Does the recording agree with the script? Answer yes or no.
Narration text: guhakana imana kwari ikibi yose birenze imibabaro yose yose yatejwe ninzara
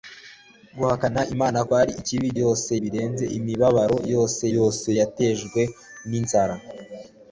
yes